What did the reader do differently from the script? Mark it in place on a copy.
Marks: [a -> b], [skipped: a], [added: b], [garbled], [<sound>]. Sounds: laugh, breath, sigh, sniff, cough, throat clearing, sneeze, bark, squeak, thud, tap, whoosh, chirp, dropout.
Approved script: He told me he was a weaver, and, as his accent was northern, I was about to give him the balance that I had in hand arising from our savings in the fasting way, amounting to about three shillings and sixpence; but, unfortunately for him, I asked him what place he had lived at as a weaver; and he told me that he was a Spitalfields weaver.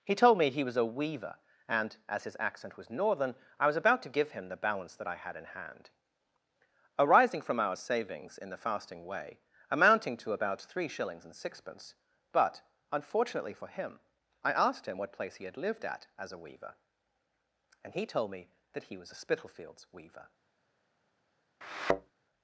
He told me he was a weaver, and, as his accent was northern, I was about to give him the balance that I had in hand arising from our savings in the fasting way, amounting to about three shillings and sixpence; but, unfortunately for him, I asked him what place he had lived at as a weaver; and he told me that he was a Spitalfields weaver. [thud]